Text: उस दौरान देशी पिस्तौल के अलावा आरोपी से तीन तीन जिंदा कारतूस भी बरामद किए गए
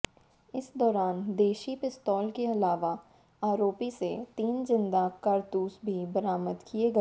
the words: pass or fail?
fail